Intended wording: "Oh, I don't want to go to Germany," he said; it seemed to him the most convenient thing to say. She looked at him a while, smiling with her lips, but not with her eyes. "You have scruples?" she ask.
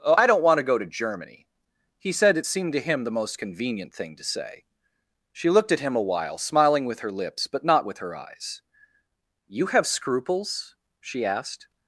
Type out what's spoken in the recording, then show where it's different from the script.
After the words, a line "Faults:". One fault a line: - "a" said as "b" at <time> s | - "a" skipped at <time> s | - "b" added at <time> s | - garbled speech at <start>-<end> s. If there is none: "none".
"Oh, I don't want to go to Germany," he said; it seemed to him the most convenient thing to say. She looked at him a while, smiling with her lips, but not with her eyes. "You have scruples?" she asked.
Faults:
- "ask" said as "asked" at 11.2 s